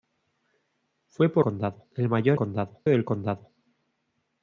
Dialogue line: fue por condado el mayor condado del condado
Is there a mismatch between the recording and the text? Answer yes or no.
no